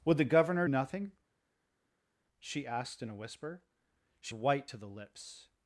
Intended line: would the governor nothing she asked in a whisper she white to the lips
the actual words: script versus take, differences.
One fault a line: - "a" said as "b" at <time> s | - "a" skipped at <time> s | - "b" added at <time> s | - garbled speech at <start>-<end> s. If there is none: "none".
none